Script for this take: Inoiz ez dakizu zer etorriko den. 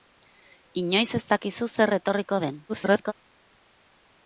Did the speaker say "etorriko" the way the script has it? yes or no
yes